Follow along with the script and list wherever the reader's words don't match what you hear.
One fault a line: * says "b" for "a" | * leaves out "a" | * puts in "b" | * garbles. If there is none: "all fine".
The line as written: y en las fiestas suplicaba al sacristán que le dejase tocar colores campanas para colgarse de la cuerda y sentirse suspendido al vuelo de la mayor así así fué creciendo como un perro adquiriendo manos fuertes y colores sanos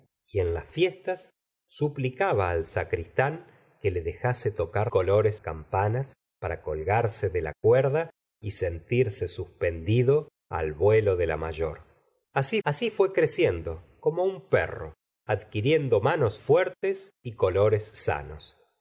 all fine